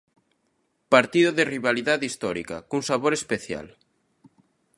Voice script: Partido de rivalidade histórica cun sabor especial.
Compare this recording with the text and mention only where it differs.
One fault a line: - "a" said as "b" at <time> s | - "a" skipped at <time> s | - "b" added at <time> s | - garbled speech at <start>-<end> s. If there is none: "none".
none